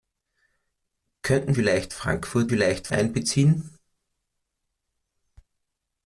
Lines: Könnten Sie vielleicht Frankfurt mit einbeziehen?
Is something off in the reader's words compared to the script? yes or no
yes